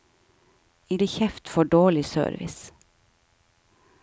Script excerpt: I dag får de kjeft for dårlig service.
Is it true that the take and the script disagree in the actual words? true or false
true